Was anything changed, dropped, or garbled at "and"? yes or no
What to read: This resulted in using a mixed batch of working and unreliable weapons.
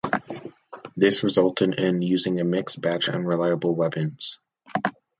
yes